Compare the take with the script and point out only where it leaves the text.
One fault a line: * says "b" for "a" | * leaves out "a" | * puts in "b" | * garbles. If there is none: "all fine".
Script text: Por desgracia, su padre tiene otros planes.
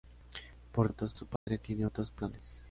* says "otros" for "desgracia"